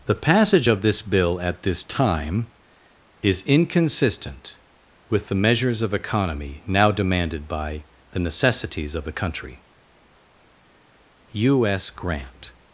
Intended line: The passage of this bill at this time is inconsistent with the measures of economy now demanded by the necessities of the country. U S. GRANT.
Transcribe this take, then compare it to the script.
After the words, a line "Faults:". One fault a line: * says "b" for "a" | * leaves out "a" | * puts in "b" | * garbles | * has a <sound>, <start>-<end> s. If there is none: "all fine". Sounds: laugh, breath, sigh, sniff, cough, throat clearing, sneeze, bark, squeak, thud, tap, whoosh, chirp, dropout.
The passage of this bill at this time is inconsistent with the measures of economy now demanded by the necessities of the country. U S. GRANT.
Faults:
all fine